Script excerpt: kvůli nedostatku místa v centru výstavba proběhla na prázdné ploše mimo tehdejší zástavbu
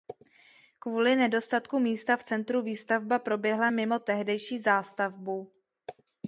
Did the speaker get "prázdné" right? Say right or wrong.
wrong